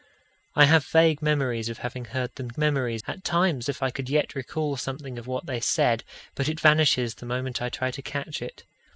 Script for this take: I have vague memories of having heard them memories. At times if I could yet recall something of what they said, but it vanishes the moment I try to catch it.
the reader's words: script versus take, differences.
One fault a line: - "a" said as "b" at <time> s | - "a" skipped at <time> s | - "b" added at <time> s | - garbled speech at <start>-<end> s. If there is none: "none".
none